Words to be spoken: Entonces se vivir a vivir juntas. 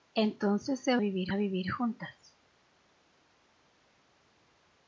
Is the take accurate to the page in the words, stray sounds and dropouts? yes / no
yes